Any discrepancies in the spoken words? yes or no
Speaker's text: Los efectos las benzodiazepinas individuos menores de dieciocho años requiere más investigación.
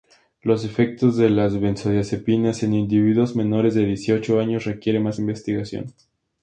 yes